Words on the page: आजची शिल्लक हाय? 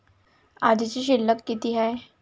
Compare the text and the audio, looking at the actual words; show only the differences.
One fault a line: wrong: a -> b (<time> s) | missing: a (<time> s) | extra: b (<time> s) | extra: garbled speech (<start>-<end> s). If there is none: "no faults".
extra: किती (1.5 s)